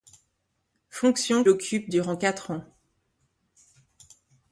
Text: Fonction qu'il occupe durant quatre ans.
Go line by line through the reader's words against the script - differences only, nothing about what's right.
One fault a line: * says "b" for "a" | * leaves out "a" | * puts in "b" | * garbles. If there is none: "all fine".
* leaves out "qu'il"